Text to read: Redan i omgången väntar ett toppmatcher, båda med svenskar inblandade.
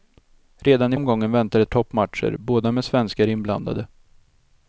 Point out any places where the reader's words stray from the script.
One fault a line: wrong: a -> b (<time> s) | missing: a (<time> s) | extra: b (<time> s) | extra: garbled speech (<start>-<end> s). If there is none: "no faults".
no faults